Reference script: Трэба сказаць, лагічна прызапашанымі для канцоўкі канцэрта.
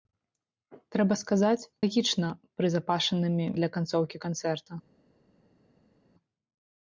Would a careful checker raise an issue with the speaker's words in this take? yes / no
no